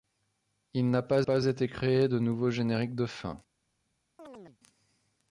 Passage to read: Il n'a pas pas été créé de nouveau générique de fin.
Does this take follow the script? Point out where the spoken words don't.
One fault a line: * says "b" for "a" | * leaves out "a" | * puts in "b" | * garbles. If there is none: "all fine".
all fine